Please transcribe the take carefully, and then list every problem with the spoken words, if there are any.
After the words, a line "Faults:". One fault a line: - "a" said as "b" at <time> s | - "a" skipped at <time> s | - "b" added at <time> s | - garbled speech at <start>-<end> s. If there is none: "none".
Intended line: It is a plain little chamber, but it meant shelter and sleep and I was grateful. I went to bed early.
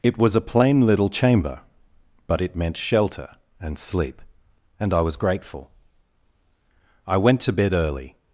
It was a plain little chamber, but it meant shelter and sleep and I was grateful. I went to bed early.
Faults:
- "is" said as "was" at 0.2 s